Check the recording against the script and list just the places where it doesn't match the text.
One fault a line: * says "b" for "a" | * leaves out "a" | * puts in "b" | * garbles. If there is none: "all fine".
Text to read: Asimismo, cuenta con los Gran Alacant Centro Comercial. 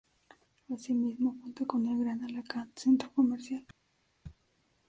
* says "el" for "los"